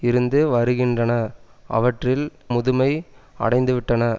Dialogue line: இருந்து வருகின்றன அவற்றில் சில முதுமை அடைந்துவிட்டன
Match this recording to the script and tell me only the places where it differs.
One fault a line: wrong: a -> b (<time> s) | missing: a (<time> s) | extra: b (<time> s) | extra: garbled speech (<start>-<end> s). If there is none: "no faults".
missing: சில (2.2 s)